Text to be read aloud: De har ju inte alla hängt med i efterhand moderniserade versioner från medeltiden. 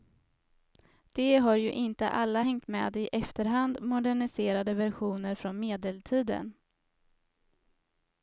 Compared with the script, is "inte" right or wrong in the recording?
right